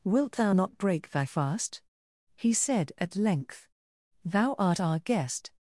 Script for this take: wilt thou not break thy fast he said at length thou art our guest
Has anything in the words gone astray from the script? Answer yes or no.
no